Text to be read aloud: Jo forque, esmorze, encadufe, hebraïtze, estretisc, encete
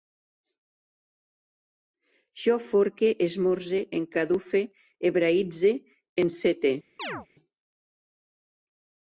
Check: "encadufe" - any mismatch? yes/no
no